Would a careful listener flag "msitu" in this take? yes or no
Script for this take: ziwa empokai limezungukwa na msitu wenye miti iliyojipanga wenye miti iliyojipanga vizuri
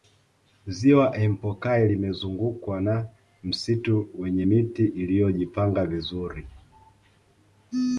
no